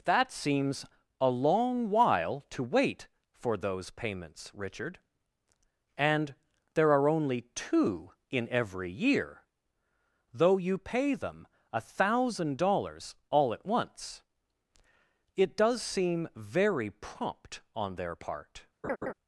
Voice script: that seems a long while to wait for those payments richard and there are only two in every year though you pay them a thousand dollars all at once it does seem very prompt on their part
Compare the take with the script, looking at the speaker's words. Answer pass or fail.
pass